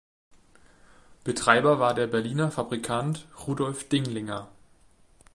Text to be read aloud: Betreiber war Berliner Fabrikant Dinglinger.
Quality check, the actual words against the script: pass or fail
fail